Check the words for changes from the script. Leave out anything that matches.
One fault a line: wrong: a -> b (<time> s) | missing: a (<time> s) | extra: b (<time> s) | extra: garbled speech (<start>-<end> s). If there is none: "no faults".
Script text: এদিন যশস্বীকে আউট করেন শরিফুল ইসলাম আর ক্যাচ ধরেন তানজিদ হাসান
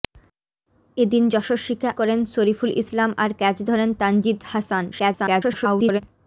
missing: আউট (1.9 s)
extra: garbled speech (4.9-6.0 s)